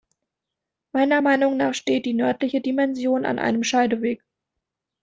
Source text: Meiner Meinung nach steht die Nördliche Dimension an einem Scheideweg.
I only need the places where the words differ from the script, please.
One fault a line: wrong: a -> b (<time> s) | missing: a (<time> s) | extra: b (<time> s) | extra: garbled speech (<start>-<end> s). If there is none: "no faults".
no faults